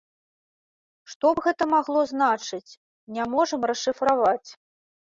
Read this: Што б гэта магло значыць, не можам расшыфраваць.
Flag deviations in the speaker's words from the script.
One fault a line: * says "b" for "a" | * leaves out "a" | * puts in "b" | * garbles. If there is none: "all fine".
all fine